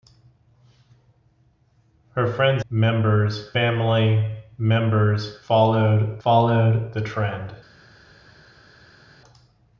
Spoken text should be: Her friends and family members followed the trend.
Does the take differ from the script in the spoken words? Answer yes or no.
yes